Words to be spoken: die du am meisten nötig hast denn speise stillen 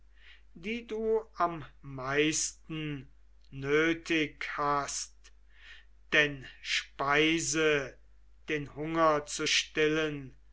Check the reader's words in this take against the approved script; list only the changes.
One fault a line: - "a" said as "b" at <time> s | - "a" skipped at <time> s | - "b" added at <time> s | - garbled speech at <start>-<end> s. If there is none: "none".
- "den hunger zu" added at 8.5 s